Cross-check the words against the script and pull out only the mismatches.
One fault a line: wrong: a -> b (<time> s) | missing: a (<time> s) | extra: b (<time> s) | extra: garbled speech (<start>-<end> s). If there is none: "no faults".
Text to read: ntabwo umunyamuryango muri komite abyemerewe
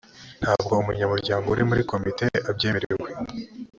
extra: uri (1.5 s)